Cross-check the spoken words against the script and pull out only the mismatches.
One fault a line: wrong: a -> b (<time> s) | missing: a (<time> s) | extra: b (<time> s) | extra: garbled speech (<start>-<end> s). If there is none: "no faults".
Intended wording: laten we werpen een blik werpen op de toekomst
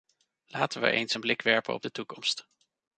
wrong: werpen -> eens (0.9 s)